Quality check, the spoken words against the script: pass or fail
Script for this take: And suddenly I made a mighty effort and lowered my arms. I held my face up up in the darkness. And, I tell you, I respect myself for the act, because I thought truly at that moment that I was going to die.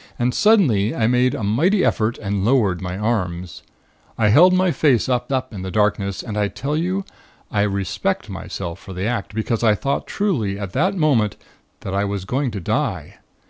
pass